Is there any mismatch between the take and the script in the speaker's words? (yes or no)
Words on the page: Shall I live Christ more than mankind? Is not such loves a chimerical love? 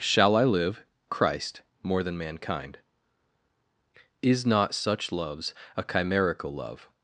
no